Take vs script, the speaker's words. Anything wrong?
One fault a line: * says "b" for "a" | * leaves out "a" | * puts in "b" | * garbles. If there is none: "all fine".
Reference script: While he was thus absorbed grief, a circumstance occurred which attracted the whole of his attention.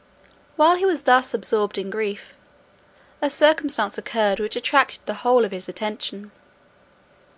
* puts in "in"